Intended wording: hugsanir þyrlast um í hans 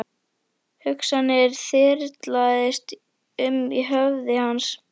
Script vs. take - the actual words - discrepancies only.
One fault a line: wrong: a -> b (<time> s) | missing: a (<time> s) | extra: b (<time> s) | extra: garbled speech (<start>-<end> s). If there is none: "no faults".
extra: höfði (3.9 s)